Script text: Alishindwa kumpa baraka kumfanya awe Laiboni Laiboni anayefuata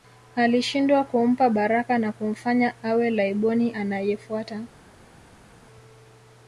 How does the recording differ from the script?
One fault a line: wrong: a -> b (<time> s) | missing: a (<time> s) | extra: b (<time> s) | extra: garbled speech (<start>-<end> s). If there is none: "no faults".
extra: na (2.0 s)
missing: Laiboni (3.7 s)